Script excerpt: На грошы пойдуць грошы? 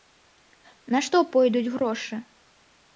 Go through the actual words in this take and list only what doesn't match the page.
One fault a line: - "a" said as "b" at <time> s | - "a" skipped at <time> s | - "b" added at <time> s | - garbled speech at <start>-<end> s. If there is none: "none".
- "грошы" said as "што" at 1.1 s